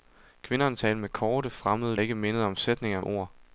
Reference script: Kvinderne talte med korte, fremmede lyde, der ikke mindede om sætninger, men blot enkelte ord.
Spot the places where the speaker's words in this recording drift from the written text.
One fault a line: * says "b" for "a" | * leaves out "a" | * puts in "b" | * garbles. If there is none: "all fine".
* leaves out "lyde der"
* leaves out "men blot enkelte"